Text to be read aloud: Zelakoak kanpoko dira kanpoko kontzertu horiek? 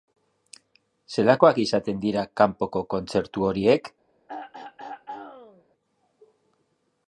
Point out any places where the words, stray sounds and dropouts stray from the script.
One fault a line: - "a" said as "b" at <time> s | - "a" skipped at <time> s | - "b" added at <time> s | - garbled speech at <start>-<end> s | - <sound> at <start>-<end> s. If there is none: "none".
- "kanpoko" said as "izaten" at 1.6 s
- throat clearing at 4.3-5.6 s